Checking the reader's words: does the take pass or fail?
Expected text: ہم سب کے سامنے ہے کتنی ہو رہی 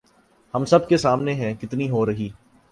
pass